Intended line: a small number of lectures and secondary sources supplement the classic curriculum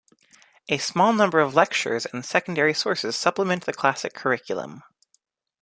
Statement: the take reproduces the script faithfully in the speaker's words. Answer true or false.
true